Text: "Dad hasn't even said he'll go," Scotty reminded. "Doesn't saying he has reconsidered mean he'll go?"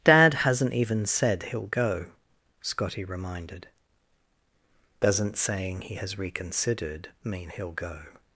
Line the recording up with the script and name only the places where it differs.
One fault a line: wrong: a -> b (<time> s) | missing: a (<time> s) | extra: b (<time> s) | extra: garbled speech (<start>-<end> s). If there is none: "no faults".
no faults